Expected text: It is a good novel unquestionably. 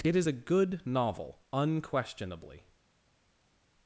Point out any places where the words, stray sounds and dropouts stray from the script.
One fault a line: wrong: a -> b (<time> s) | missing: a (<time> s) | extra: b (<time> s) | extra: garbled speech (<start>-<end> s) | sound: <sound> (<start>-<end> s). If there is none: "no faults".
no faults